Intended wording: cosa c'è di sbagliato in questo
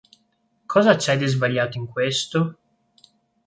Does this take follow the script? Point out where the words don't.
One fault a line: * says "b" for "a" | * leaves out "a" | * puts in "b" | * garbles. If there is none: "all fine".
all fine